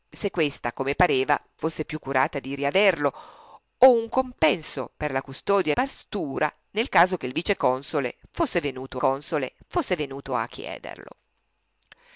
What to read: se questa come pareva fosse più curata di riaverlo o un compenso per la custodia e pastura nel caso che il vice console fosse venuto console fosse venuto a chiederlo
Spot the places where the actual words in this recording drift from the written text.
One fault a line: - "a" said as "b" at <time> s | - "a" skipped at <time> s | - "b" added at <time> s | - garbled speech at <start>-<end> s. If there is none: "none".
none